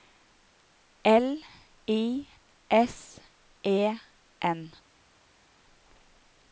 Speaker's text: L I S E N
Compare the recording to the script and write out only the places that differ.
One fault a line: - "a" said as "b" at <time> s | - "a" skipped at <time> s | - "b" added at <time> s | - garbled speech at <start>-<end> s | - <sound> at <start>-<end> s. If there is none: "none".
none